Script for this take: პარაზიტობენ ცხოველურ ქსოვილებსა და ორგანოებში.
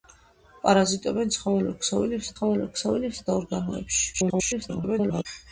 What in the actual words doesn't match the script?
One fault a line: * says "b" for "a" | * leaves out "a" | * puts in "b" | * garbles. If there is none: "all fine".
* puts in "ცხოველურ ქსოვილებსა"
* garbles